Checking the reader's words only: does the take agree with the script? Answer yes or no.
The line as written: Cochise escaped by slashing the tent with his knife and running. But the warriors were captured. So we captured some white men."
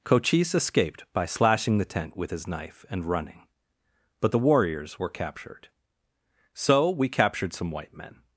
yes